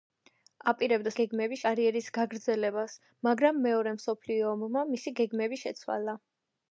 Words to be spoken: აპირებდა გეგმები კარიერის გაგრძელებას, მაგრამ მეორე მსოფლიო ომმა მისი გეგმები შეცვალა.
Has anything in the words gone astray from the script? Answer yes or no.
no